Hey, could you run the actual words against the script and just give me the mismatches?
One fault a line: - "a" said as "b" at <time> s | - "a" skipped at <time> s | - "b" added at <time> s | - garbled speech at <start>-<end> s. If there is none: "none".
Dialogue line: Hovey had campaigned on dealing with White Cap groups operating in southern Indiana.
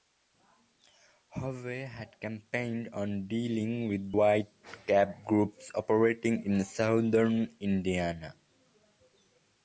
none